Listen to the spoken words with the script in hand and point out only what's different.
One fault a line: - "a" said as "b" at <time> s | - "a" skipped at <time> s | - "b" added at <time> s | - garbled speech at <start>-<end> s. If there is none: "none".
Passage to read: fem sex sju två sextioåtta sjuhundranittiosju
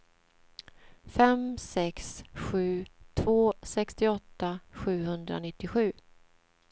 none